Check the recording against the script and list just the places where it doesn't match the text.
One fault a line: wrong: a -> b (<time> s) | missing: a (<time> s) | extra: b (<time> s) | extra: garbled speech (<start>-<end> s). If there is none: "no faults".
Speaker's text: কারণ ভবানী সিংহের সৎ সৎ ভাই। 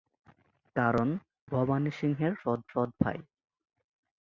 no faults